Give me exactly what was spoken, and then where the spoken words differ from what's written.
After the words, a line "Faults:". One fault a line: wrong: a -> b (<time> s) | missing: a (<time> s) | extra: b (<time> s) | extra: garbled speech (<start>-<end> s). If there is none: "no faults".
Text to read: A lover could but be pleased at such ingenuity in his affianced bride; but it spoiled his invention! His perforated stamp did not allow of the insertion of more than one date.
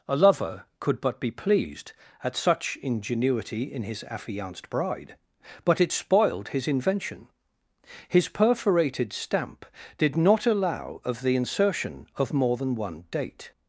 A lover could but be pleased at such ingenuity in his affianced bride; but it spoiled his invention! His perforated stamp did not allow of the insertion of more than one date.
Faults:
no faults